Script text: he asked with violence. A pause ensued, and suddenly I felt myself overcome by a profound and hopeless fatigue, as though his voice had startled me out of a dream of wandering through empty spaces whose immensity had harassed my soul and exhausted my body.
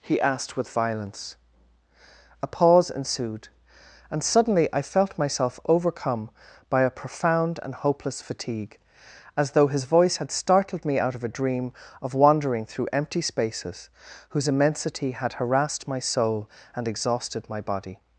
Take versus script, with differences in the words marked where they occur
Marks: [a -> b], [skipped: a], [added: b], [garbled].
he asked with violence. A pause ensued, and suddenly I felt myself overcome by a profound and hopeless fatigue, as though his voice had startled me out of a dream of wandering through empty spaces whose immensity had harassed my soul and exhausted my body.